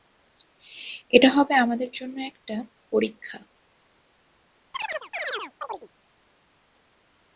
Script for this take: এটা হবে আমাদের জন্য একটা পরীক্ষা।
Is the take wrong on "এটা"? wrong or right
right